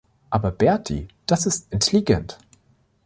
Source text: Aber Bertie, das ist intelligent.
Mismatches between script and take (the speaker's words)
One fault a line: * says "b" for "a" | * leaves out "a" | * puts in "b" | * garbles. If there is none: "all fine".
all fine